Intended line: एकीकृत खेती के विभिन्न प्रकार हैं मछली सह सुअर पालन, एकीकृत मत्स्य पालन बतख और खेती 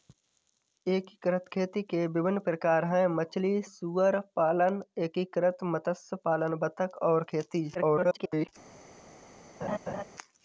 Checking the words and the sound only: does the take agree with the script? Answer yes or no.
no